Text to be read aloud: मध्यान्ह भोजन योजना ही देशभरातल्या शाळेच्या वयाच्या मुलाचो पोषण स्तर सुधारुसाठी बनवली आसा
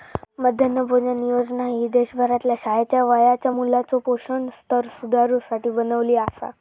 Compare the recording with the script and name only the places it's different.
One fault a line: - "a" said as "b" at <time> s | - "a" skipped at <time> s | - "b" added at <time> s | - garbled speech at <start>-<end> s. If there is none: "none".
none